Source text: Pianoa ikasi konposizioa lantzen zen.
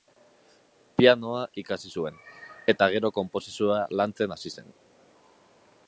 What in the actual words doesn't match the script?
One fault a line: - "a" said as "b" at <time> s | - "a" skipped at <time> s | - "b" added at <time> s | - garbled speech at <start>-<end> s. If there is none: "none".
- "zuen eta gero" added at 2.0 s
- "hasi" added at 4.4 s